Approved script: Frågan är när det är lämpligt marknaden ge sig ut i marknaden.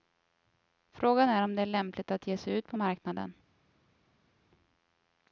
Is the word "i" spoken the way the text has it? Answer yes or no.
no